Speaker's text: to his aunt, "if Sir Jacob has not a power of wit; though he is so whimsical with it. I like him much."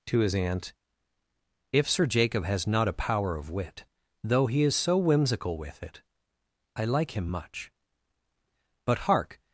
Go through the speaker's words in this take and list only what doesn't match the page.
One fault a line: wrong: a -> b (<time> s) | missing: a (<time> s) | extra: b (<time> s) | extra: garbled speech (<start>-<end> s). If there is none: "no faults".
extra: But hark (8.9 s)